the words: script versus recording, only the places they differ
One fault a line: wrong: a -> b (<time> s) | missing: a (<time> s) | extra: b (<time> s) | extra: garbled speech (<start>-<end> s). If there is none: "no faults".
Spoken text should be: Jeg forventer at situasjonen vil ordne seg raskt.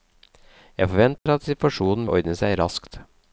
missing: vil (2.1 s)